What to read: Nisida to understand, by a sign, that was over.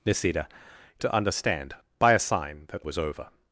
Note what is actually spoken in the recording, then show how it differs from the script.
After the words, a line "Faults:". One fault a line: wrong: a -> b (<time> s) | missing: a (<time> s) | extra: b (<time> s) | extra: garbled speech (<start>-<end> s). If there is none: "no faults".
Nisida to understand, by a sign, that was over.
Faults:
no faults